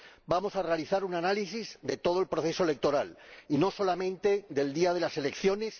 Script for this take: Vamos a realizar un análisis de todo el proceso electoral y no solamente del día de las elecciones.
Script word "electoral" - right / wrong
right